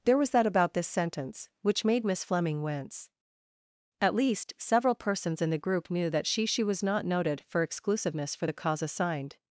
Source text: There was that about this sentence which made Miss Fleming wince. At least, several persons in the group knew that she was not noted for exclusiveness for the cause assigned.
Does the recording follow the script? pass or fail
fail